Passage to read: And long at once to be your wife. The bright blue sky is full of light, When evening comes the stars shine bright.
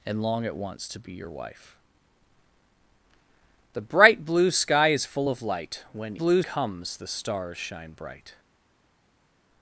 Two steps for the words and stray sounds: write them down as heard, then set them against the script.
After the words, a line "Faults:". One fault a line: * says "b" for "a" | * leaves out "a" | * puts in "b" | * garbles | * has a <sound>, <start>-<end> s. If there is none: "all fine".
And long at once to be your wife. The bright blue sky is full of light, When blue comes the stars shine bright.
Faults:
* says "blue" for "evening"